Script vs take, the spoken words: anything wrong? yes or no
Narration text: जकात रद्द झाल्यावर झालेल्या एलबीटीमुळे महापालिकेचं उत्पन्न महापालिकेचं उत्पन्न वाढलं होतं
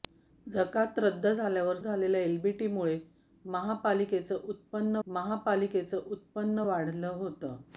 no